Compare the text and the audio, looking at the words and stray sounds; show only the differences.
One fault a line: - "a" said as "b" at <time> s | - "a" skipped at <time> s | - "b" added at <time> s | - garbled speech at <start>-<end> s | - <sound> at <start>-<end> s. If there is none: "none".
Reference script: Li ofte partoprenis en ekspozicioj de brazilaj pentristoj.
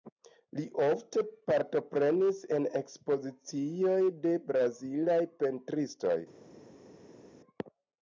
none